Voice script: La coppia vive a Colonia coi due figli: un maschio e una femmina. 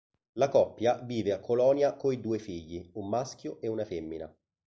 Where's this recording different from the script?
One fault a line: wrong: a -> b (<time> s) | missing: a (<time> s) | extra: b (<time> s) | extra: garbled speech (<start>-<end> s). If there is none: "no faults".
no faults